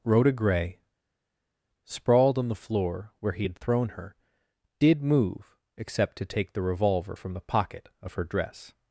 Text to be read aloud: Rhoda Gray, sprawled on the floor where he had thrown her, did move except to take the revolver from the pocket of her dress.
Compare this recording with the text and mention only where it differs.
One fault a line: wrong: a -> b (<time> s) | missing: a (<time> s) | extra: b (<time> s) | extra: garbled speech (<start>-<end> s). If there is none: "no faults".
no faults